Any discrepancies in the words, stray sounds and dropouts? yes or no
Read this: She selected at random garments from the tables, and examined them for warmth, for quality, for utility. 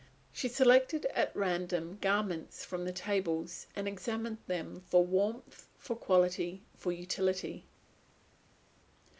no